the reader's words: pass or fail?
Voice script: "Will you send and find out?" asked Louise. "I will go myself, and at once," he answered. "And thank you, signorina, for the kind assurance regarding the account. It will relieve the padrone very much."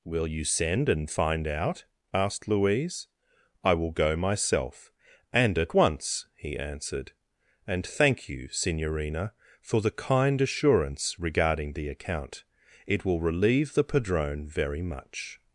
pass